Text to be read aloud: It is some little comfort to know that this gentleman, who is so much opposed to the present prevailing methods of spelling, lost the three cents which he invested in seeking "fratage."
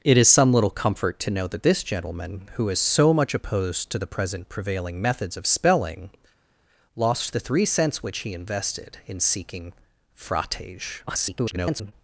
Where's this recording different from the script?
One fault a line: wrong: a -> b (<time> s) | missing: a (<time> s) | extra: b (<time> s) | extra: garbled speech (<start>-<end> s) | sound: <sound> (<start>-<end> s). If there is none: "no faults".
extra: garbled speech (11.1-11.9 s)